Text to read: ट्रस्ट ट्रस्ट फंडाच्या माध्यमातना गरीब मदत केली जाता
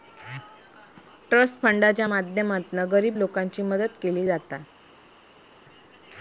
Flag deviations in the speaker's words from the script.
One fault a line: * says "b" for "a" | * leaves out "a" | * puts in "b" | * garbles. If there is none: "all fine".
* leaves out "ट्रस्ट"
* puts in "लोकांची"